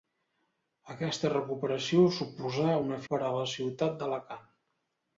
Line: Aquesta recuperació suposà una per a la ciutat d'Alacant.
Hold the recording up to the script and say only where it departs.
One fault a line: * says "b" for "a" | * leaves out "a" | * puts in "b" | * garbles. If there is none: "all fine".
all fine